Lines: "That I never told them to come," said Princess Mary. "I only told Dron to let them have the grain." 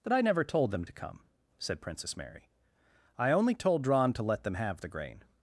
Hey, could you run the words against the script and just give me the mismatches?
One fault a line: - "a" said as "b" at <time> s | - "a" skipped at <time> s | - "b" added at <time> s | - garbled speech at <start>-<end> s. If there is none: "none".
none